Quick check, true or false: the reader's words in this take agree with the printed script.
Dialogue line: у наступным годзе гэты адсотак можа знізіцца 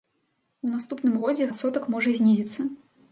false